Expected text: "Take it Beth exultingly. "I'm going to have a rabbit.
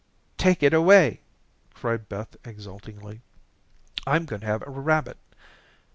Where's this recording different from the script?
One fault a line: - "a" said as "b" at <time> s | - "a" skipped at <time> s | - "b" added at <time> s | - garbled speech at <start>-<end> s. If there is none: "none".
- "away cried" added at 0.7 s